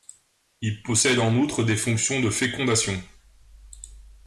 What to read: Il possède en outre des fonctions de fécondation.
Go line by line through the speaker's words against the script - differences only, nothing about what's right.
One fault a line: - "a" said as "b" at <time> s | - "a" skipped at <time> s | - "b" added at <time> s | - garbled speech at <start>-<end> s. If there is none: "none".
none